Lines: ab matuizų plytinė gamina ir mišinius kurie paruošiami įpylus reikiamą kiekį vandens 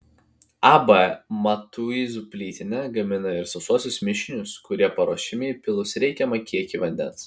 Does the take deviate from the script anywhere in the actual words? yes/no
yes